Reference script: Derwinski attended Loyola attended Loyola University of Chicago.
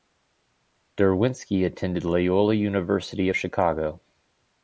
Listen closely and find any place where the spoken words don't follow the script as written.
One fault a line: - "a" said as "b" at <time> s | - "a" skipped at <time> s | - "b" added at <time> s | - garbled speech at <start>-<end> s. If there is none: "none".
- "attended Loyola" skipped at 2.5 s